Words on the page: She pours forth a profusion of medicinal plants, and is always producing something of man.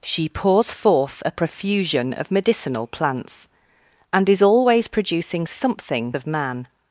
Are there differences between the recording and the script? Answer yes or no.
no